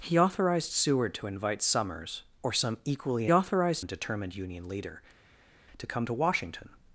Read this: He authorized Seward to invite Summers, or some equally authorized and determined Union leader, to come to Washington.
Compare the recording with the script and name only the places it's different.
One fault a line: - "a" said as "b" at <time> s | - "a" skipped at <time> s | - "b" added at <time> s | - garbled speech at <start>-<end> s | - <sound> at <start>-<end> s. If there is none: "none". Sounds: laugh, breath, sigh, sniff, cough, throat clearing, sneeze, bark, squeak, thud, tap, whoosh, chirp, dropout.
none